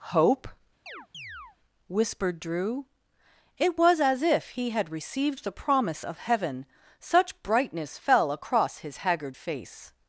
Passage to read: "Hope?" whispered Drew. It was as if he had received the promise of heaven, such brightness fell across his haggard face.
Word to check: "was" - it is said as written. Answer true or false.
true